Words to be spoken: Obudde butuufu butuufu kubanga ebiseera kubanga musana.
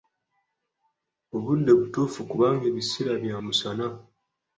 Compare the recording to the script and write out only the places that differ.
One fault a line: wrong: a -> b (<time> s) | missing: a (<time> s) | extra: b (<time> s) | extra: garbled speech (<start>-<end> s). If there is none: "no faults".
missing: butuufu (2.2 s)
wrong: kubanga -> bya (3.2 s)